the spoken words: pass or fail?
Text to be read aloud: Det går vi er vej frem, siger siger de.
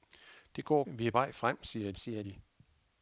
pass